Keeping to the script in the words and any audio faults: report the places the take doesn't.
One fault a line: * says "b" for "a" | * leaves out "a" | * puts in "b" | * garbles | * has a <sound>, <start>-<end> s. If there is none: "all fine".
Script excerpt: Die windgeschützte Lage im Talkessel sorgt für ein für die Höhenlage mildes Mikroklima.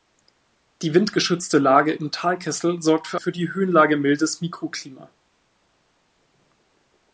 * leaves out "ein"